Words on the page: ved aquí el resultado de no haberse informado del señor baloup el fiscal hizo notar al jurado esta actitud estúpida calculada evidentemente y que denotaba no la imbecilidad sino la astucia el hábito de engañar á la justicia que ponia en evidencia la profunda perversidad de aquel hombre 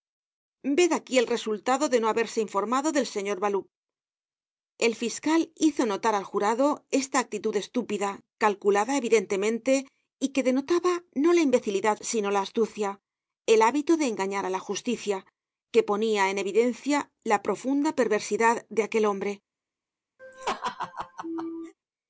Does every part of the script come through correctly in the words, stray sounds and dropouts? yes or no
no